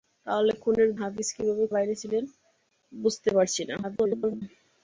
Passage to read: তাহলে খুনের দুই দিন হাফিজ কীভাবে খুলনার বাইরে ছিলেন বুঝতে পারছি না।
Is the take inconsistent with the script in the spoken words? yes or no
yes